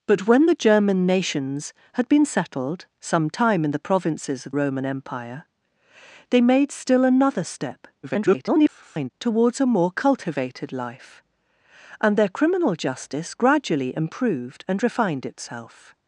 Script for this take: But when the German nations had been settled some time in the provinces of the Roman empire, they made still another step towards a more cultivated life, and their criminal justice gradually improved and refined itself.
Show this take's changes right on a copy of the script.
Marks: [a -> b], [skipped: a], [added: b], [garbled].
But when the German nations had been settled some time in the provinces of [skipped: the] Roman empire, they made still another step [garbled] towards a more cultivated life, and their criminal justice gradually improved and refined itself.